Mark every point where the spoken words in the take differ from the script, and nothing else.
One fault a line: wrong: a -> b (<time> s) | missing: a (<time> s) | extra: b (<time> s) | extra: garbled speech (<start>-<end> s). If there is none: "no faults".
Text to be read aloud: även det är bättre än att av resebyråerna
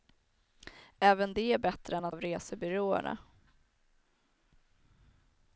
no faults